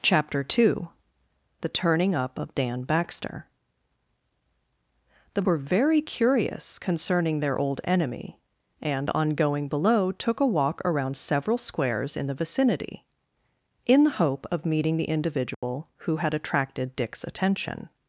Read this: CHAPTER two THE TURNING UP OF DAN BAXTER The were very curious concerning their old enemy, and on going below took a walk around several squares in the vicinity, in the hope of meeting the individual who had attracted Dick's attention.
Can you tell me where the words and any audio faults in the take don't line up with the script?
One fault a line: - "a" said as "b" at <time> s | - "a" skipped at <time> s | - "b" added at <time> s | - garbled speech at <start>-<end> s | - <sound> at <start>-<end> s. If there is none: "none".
- dropout at 15.5-15.6 s